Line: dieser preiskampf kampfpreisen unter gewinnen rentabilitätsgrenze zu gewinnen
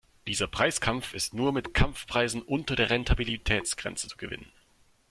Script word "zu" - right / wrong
right